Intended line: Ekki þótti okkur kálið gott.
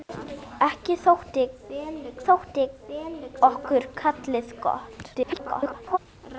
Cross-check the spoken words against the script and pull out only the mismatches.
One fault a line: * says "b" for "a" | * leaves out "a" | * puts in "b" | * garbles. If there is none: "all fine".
* puts in "þótti"
* garbles